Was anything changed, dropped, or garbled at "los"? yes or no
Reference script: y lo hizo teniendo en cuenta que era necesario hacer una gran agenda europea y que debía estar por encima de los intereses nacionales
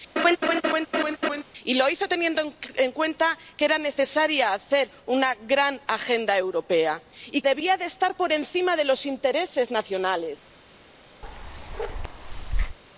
no